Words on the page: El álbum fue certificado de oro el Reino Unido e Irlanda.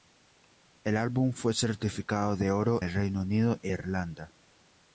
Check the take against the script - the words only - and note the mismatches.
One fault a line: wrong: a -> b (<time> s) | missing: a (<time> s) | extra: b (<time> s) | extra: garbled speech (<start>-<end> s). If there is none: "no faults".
no faults